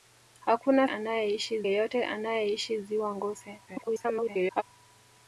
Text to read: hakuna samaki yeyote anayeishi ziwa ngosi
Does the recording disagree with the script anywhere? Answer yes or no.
yes